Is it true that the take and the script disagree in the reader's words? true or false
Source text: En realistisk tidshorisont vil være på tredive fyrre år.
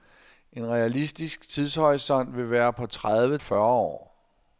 false